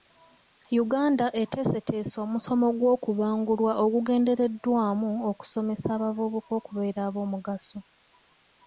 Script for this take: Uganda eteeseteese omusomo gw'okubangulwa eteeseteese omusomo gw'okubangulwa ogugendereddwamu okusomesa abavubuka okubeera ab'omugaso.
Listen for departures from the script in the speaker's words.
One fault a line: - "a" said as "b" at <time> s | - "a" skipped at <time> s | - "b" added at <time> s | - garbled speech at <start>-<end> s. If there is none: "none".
- "eteeseteese omusomo gw'okubangulwa" skipped at 3.7 s